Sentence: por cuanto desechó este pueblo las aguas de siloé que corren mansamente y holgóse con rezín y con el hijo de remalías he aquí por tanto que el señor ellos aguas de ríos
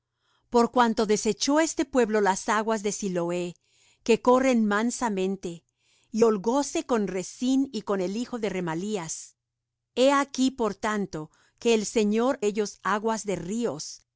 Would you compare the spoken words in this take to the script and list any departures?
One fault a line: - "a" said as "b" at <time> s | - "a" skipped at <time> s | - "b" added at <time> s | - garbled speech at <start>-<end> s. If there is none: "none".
none